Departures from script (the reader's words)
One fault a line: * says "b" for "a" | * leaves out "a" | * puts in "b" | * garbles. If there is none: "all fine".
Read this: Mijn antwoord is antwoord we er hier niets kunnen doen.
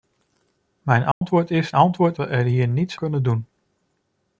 all fine